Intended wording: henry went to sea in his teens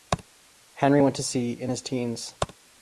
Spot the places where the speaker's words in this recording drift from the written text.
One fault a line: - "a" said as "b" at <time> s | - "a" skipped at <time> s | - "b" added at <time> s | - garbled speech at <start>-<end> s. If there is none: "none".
none